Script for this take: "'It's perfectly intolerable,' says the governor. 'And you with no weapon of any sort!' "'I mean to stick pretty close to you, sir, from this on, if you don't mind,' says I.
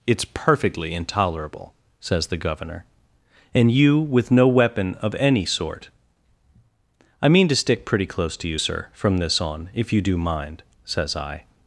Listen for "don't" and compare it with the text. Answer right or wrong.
wrong